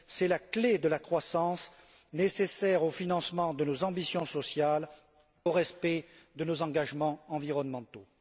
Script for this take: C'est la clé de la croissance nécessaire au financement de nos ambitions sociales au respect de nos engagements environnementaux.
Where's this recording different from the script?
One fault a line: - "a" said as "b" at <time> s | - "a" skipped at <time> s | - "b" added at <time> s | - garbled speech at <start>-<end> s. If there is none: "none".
none